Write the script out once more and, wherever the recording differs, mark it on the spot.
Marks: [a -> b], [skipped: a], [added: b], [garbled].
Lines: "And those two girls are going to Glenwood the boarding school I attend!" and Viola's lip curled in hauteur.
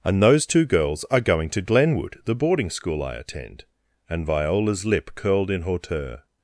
"And those two girls are going to Glenwood the boarding school I attend!" and Viola's lip curled in hauteur.